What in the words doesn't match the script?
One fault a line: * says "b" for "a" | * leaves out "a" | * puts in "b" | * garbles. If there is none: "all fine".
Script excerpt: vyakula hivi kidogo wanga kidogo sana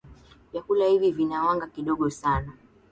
* says "vina" for "kidogo"